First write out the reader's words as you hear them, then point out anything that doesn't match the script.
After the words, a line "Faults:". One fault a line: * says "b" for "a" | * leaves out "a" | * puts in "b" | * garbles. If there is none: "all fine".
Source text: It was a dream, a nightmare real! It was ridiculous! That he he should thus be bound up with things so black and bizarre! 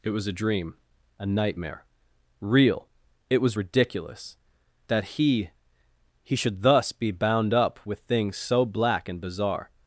It was a dream, a nightmare real! It was ridiculous! That he he should thus be bound up with things so black and bizarre!
Faults:
all fine